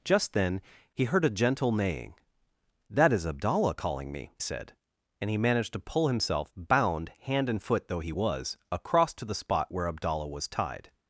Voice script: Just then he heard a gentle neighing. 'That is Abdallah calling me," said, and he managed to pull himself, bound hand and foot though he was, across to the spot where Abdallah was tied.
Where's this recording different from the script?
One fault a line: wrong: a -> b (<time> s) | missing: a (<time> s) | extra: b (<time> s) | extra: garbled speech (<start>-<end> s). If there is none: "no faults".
no faults